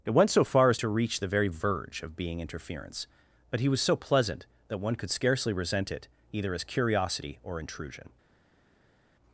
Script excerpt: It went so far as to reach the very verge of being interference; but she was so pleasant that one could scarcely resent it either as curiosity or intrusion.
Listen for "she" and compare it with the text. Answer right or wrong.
wrong